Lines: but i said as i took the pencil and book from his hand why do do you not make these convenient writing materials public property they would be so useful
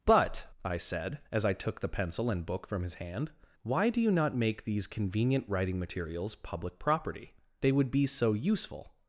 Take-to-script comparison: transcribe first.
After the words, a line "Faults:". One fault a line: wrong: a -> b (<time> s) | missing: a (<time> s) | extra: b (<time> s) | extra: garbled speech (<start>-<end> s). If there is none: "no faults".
but i said as i took the pencil and book from his hand why do you not make these convenient writing materials public property they would be so useful
Faults:
missing: do (4.0 s)